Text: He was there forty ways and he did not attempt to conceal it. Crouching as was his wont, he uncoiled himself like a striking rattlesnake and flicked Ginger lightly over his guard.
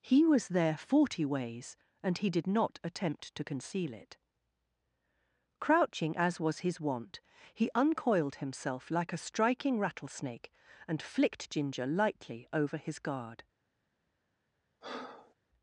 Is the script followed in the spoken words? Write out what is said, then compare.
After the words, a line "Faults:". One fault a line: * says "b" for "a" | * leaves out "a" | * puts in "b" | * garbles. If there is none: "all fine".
He was there forty ways and he did not attempt to conceal it. Crouching as was his wont, he uncoiled himself like a striking rattlesnake and flicked Ginger lightly over his guard.
Faults:
all fine